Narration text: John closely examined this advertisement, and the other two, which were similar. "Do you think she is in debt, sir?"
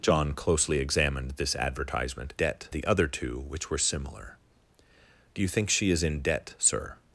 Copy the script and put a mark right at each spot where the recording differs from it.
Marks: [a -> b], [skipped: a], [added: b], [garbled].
John closely examined this advertisement, [and -> debt] the other two, which were similar. "Do you think she is in debt, sir?"